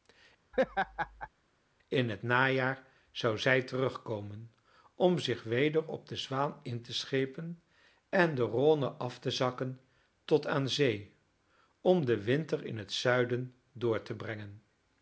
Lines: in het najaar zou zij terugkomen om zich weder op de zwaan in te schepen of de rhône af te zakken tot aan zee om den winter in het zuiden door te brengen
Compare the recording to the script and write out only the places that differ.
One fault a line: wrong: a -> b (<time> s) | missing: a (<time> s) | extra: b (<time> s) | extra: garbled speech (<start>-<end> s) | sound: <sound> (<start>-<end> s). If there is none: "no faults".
sound: laugh (0.5-1.3 s)
wrong: of -> en (8.1 s)